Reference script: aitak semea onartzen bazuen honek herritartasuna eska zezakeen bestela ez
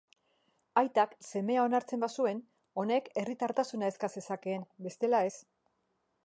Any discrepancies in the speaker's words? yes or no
no